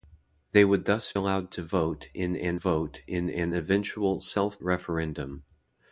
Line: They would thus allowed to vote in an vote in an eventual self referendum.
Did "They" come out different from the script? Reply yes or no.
no